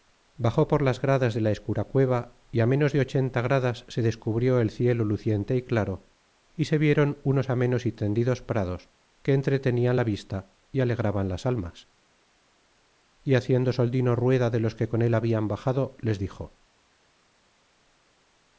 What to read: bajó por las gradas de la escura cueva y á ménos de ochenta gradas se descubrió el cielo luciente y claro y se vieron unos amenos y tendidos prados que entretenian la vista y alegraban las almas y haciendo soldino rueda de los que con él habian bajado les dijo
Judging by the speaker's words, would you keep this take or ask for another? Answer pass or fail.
pass